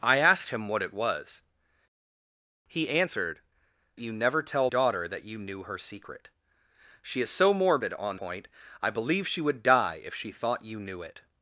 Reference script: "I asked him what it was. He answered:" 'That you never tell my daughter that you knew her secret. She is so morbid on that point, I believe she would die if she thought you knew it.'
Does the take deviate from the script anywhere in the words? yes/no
yes